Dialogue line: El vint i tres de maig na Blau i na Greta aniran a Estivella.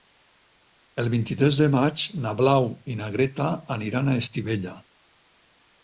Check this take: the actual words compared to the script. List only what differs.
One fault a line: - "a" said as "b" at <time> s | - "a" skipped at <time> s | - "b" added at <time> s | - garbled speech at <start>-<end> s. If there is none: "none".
none